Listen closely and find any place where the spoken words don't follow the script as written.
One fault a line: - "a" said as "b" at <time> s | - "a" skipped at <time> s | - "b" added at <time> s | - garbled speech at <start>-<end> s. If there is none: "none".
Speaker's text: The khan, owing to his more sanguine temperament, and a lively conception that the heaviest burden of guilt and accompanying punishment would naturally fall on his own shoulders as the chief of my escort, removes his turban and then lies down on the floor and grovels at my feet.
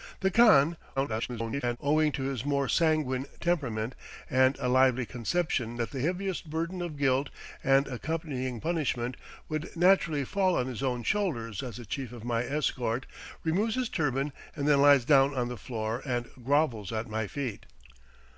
- garbled speech at 1.0-1.8 s